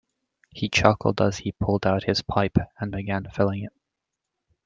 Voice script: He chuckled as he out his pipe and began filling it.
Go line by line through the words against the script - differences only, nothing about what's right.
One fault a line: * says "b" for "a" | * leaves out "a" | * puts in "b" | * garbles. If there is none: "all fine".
* puts in "pulled"